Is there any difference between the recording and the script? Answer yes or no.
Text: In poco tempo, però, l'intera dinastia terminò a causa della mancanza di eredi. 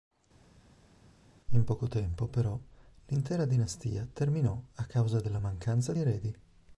yes